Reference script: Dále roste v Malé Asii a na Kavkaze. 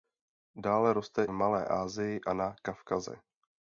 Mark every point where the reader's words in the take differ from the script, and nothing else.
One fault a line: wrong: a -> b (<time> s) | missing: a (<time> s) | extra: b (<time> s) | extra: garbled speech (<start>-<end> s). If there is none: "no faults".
no faults